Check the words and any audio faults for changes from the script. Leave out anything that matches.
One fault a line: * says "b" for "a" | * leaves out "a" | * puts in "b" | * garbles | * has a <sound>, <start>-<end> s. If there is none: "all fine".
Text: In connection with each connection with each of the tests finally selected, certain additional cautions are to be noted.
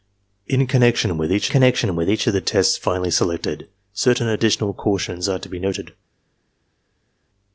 all fine